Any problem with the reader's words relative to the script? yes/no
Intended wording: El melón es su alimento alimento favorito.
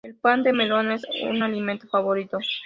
yes